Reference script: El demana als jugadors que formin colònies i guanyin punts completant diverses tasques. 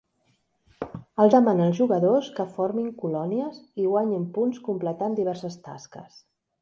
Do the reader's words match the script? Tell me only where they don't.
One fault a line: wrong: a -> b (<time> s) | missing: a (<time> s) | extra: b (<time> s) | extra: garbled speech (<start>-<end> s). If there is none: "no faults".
no faults